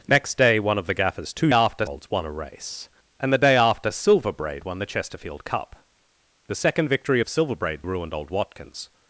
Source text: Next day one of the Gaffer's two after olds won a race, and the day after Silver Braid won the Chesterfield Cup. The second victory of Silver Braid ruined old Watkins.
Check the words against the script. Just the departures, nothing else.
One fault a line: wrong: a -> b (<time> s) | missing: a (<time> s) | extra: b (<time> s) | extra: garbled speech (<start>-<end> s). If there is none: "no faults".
no faults